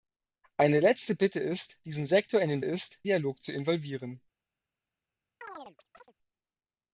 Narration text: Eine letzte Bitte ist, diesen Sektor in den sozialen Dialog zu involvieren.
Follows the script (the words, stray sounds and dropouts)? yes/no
no